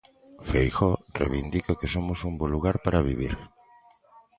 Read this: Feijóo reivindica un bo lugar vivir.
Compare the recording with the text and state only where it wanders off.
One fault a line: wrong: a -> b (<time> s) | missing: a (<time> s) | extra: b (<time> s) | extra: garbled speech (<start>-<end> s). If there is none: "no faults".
extra: que somos (1.8 s)
extra: para (2.9 s)